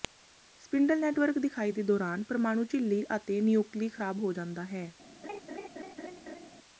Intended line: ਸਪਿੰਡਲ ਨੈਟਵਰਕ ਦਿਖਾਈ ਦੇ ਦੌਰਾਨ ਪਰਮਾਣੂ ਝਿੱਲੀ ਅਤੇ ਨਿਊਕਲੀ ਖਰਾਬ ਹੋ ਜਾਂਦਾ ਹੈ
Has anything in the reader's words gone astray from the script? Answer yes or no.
no